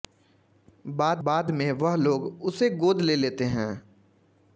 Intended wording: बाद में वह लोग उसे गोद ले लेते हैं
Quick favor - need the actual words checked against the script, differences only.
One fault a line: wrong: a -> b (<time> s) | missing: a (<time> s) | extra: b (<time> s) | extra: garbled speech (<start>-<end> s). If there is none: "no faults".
extra: बाद (1.3 s)